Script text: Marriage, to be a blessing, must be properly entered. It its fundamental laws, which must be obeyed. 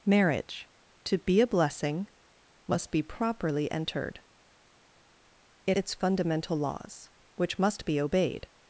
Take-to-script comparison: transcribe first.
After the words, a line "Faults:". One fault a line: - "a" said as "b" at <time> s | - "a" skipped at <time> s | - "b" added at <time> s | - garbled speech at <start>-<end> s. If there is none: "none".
Marriage, to be a blessing, must be properly entered. It its fundamental laws, which must be obeyed.
Faults:
none